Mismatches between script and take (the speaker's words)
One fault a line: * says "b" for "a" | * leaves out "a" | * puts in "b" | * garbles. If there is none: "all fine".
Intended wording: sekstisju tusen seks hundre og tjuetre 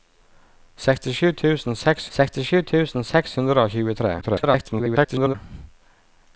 * puts in "sekstisju tusen seks"
* garbles